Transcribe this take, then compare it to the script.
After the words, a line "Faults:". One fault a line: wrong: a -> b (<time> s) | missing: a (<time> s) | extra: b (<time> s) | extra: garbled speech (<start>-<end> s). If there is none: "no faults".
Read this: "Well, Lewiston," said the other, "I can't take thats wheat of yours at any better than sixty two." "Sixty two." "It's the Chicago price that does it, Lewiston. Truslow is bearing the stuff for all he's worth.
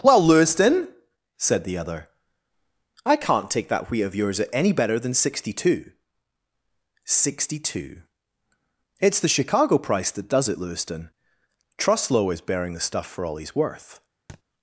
"Well, Lewiston," said the other, "I can't take that wheat of yours at any better than sixty two." "Sixty two." "It's the Chicago price that does it, Lewiston. Truslow is bearing the stuff for all he's worth.
Faults:
wrong: thats -> that (3.7 s)